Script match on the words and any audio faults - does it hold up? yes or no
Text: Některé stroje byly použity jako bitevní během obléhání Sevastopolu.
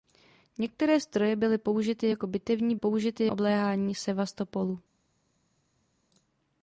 no